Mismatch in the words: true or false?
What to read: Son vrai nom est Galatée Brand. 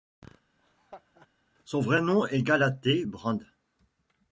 false